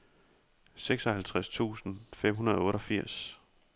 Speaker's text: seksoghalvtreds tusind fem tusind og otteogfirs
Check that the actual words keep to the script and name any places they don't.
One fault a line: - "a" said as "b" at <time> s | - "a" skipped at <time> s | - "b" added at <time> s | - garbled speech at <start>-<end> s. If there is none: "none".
- "tusind" said as "hundrede" at 2.3 s